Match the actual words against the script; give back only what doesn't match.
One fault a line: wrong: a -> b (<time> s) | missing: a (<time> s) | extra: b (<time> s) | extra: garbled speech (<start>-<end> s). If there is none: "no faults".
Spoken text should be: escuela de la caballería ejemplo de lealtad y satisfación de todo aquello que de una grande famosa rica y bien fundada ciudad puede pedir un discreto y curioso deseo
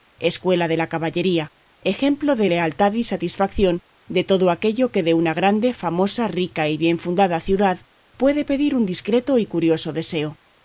no faults